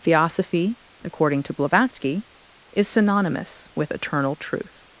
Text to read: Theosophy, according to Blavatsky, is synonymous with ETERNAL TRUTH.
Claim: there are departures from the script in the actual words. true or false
false